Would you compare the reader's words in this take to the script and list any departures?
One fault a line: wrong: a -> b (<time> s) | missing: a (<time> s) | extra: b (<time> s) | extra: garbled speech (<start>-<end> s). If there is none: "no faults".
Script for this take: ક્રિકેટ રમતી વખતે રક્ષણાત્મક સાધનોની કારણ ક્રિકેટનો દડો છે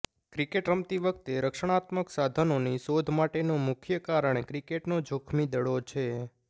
extra: શોધ માટેનું મુખ્ય (2.8 s)
extra: જોખમી (5.1 s)